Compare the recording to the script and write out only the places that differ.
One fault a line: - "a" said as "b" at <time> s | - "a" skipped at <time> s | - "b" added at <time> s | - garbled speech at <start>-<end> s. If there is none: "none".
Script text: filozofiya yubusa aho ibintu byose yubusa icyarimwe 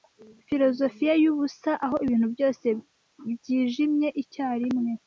- "yubusa" said as "byijimye" at 3.3 s